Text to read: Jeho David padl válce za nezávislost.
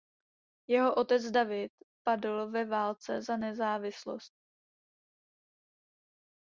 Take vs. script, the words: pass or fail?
fail